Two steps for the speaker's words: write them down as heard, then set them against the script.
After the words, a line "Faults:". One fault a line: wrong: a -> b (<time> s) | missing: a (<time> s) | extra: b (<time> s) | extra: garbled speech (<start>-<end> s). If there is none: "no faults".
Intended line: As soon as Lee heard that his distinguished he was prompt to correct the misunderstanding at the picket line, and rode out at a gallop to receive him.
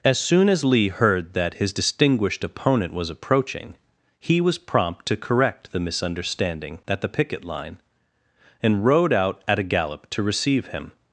As soon as Lee heard that his distinguished opponent was approaching, he was prompt to correct the misunderstanding at the picket line, and rode out at a gallop to receive him.
Faults:
extra: opponent was approaching (2.4 s)